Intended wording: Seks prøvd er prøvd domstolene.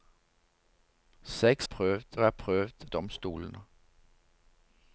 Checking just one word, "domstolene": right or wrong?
right